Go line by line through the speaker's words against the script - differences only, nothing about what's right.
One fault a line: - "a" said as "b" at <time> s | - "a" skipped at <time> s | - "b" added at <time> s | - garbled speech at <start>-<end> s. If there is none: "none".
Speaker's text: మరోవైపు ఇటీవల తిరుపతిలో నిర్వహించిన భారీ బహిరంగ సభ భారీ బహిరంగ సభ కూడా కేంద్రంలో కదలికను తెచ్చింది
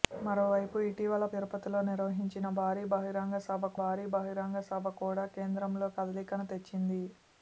none